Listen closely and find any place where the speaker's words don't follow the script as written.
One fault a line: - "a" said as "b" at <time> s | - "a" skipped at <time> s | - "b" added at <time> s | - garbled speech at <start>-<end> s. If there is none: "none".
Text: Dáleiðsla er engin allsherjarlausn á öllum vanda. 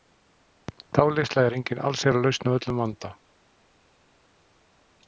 none